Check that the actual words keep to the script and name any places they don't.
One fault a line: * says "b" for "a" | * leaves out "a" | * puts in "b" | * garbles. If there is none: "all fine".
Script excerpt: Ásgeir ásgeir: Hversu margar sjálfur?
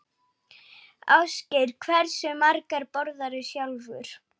* leaves out "ásgeir"
* puts in "borðarðu"